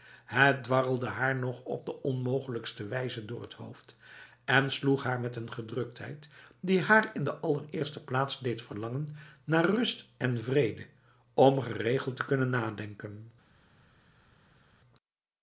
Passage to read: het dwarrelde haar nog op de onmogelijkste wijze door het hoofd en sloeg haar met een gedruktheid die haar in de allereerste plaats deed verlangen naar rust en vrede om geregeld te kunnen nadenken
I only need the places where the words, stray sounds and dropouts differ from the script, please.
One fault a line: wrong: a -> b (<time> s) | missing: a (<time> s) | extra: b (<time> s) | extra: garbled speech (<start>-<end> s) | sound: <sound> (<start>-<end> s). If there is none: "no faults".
no faults